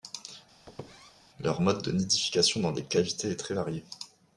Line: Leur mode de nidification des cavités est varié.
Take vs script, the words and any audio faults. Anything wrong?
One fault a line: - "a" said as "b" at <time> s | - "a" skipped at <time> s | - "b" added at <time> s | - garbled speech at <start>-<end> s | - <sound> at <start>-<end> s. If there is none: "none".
- squeak at 0.7-1.1 s
- "dans" added at 2.6 s
- "très" added at 3.4 s